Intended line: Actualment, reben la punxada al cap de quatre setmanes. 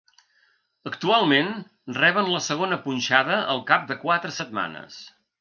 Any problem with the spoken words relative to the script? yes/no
yes